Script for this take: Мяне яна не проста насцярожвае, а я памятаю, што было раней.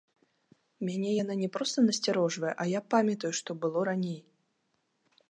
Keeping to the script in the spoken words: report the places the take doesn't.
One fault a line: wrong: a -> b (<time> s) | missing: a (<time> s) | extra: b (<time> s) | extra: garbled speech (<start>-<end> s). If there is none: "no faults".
no faults